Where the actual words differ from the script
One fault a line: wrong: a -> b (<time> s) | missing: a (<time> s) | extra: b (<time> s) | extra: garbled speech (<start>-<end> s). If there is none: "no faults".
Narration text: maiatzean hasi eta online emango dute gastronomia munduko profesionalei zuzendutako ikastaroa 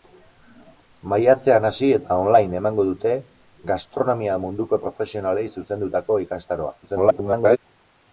extra: garbled speech (6.8-7.6 s)